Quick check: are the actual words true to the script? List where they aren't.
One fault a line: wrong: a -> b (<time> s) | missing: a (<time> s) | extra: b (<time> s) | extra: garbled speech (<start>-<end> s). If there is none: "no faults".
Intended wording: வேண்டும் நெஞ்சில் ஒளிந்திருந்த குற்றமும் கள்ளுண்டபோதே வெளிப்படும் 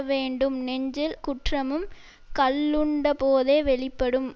missing: ஒளிந்திருந்த (1.1 s)